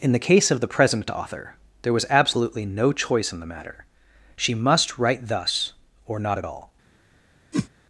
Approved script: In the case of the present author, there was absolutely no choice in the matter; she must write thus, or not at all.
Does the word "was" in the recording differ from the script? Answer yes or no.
no